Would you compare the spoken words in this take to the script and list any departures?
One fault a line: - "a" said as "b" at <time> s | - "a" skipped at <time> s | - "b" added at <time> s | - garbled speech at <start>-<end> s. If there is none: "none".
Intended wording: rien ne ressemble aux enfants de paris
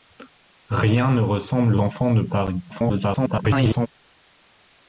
- "aux" skipped at 1.8 s
- garbled speech at 2.7-3.9 s